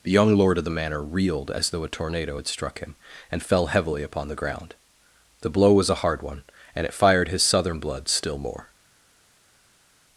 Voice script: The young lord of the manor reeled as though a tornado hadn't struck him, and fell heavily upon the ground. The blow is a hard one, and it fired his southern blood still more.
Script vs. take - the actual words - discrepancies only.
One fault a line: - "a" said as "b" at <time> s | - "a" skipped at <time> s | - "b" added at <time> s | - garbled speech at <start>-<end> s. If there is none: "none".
- "hadn't" said as "had" at 2.4 s
- "is" said as "was" at 5.7 s